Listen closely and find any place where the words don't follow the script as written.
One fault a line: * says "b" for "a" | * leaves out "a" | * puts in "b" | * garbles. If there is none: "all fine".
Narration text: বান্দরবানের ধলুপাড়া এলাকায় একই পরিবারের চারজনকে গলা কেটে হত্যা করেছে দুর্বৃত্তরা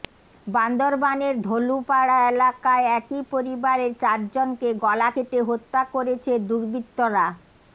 all fine